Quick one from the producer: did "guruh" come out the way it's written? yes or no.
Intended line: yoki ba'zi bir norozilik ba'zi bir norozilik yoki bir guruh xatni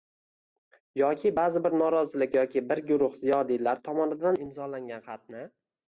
no